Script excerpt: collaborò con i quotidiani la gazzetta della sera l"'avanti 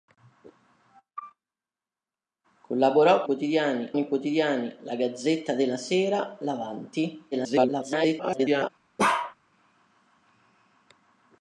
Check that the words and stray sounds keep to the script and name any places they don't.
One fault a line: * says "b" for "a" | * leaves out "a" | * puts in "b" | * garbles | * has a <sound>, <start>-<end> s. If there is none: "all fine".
* says "quotidiani" for "con"
* garbles
* has a bark, 9.0-9.3 s